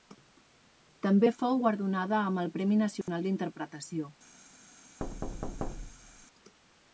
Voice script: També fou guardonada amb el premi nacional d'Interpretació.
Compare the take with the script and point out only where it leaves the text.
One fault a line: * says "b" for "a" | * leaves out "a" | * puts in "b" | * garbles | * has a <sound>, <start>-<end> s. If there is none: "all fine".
* has a dropout, 3.0-3.1 s
* has a thud, 5.0-6.3 s